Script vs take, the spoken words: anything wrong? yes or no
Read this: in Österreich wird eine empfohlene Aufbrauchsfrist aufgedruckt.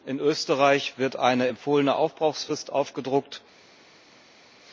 no